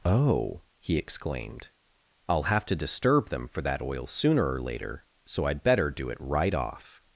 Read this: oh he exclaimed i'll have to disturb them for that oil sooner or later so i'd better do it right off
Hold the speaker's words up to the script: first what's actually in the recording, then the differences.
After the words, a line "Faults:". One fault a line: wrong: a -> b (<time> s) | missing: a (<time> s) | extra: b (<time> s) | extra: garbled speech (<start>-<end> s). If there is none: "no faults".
oh he exclaimed i'll have to disturb them for that oil sooner or later so i'd better do it right off
Faults:
no faults